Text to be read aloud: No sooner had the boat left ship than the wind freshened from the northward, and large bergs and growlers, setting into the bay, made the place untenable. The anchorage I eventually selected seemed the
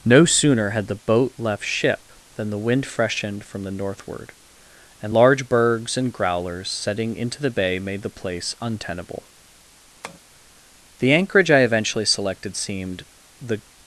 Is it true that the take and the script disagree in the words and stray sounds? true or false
true